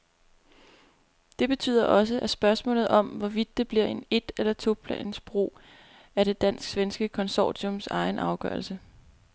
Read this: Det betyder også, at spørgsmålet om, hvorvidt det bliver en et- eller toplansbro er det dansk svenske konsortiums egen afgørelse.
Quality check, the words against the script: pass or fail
pass